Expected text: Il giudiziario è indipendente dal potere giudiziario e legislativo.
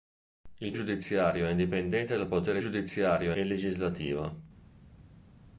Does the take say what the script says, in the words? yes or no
yes